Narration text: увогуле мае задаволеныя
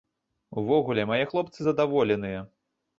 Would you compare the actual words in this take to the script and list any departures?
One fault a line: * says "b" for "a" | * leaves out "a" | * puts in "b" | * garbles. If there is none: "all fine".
* puts in "хлопцы"